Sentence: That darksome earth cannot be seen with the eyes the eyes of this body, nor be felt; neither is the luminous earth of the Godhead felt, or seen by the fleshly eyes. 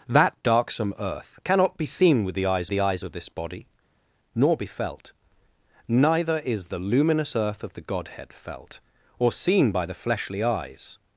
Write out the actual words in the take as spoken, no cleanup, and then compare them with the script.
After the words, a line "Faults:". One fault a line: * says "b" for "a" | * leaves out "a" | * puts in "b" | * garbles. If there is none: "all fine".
That darksome earth cannot be seen with the eyes the eyes of this body, nor be felt; neither is the luminous earth of the Godhead felt, or seen by the fleshly eyes.
Faults:
all fine